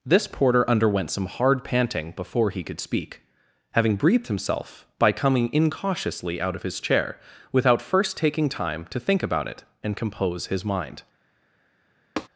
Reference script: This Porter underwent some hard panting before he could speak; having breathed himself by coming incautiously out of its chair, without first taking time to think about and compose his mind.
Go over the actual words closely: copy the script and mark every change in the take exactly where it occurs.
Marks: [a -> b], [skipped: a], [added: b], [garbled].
This Porter underwent some hard panting before he could speak; having breathed himself by coming incautiously out of [its -> his] chair, without first taking time to think about [added: it] and compose his mind.